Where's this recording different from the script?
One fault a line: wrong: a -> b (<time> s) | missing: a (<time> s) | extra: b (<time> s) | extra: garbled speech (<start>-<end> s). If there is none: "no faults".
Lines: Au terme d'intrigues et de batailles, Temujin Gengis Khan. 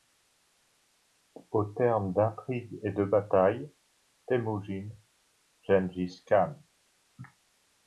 no faults